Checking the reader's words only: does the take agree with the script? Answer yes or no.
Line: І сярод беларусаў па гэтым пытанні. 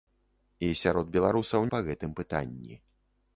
yes